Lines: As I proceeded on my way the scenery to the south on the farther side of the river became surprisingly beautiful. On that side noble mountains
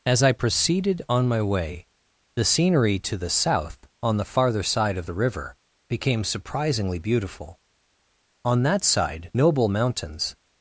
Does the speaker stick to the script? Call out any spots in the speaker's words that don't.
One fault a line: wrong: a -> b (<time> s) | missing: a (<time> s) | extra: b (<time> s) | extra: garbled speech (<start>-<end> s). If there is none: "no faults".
no faults